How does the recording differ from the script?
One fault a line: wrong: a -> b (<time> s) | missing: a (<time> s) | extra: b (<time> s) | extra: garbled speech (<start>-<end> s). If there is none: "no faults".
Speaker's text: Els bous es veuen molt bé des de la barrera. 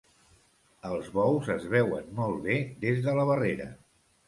no faults